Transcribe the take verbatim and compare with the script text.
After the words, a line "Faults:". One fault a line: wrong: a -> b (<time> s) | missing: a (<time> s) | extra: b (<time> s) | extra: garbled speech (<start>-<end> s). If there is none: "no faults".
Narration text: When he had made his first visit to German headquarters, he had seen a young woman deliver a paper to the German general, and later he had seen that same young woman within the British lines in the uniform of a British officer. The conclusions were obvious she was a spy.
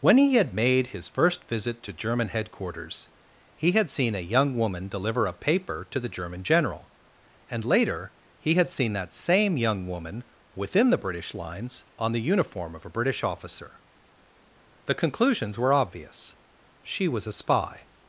When he had made his first visit to German headquarters, he had seen a young woman deliver a paper to the German general, and later he had seen that same young woman within the British lines on the uniform of a British officer. The conclusions were obvious she was a spy.
Faults:
wrong: in -> on (12.0 s)